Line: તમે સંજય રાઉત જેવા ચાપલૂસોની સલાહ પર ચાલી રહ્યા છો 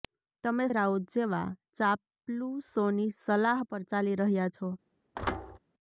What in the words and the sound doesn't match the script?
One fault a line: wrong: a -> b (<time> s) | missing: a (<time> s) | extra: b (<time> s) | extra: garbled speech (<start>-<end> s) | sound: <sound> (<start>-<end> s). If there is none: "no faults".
missing: સંજય (0.7 s)
sound: thud (5.1-5.6 s)